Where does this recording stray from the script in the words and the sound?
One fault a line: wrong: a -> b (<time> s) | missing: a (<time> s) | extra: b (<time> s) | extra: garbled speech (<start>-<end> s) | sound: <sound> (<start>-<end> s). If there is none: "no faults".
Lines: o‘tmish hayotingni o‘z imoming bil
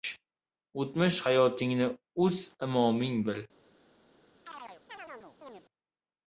sound: chirp (4.5-5.6 s)